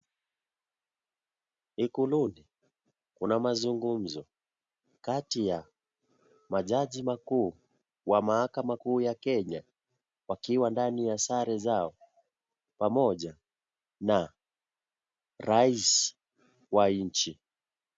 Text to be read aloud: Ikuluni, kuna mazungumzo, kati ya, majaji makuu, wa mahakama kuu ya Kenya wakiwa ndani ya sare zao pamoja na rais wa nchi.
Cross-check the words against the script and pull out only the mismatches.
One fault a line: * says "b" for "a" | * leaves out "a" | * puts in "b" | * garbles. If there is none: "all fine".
all fine